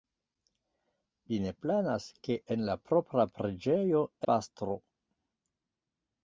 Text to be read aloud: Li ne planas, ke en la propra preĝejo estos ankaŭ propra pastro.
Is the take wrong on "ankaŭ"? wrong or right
wrong